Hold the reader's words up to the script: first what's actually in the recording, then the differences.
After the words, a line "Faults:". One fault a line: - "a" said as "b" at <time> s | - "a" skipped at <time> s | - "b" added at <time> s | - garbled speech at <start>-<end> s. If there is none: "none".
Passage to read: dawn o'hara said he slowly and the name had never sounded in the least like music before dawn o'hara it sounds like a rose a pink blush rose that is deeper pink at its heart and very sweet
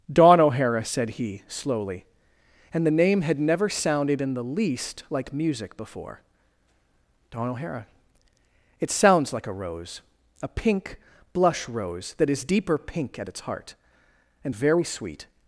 dawn o'hara said he slowly and the name had never sounded in the least like music before dawn o'hara it sounds like a rose a pink blush rose that is deeper pink at its heart and very sweet
Faults:
none